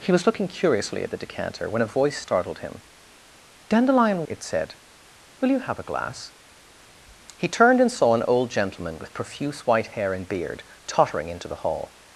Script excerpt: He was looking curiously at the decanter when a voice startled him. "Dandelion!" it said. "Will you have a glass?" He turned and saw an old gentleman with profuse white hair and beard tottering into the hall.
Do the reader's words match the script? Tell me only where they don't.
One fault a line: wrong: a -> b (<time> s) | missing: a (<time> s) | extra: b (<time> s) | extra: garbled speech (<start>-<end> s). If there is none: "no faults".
no faults